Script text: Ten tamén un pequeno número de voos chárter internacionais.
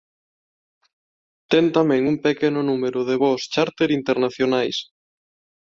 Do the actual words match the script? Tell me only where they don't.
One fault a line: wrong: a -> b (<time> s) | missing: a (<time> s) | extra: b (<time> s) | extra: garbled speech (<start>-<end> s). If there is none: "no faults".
no faults